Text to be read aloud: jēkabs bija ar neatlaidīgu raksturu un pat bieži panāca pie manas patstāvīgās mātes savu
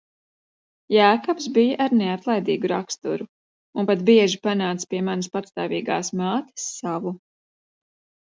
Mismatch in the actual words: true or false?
false